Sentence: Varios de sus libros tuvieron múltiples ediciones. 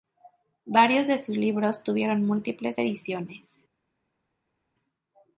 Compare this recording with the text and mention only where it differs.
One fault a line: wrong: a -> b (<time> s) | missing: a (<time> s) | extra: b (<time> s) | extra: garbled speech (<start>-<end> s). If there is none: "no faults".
no faults